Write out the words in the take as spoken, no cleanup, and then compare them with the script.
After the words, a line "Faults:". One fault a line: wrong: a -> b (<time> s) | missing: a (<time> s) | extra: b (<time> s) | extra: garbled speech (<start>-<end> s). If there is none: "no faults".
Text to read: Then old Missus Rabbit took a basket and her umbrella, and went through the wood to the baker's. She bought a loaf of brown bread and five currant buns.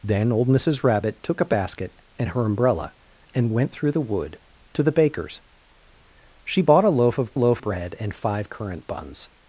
Then old Missus Rabbit took a basket and her umbrella, and went through the wood to the baker's. She bought a loaf of loaf bread and five currant buns.
Faults:
wrong: brown -> loaf (7.3 s)